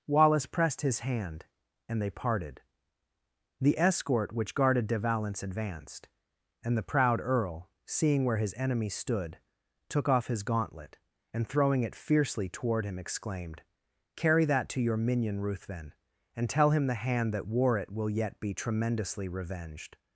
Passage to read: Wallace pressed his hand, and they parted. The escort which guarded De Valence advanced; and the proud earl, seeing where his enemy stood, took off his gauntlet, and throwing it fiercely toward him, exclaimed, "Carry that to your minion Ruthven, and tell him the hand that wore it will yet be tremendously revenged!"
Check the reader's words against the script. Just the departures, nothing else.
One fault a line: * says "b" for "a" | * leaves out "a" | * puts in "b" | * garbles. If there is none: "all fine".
all fine